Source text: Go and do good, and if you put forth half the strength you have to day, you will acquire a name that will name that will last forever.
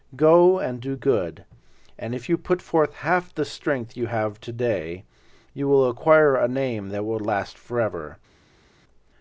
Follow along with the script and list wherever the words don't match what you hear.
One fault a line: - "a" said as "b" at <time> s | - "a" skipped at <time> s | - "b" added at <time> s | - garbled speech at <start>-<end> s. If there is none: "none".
- "name that will" skipped at 7.2 s